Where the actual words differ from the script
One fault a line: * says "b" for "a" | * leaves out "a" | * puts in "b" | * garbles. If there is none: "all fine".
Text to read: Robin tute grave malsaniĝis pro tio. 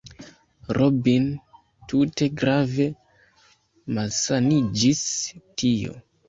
* leaves out "pro"